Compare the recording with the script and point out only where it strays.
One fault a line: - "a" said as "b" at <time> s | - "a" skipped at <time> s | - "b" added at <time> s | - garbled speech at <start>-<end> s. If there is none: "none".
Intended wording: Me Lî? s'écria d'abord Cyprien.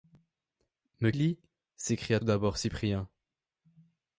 none